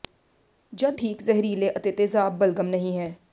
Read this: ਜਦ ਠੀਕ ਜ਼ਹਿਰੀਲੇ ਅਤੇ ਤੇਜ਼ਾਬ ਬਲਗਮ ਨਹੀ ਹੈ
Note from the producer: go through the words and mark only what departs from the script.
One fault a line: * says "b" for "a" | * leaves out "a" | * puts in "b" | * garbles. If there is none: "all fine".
all fine